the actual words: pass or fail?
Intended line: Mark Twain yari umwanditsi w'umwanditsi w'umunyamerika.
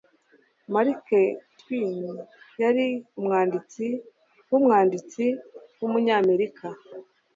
pass